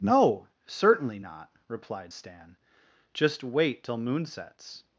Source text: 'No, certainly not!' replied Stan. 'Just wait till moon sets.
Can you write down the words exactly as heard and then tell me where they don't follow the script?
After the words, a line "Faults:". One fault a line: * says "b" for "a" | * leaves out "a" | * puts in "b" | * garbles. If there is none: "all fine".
'No, certainly not!' replied Stan. 'Just wait till moon sets.
Faults:
all fine